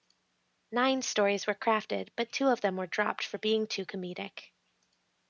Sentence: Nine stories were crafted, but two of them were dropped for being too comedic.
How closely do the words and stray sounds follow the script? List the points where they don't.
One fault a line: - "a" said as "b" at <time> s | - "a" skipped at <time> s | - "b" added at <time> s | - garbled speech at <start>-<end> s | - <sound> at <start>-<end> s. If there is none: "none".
none